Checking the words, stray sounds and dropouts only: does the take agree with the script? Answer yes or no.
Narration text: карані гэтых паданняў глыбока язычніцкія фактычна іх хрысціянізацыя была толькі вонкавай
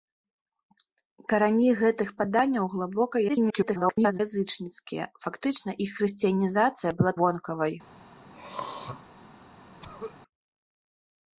no